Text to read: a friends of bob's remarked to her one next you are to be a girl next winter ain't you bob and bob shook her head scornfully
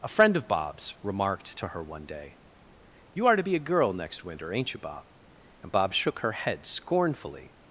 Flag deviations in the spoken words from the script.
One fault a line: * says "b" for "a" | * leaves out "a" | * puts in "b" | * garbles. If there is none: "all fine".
* says "friend" for "friends"
* says "day" for "next"